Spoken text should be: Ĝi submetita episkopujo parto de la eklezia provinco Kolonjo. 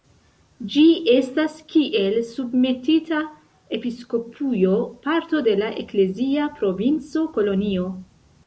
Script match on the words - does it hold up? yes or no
no